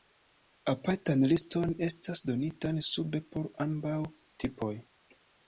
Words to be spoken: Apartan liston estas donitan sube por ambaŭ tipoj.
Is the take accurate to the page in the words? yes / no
yes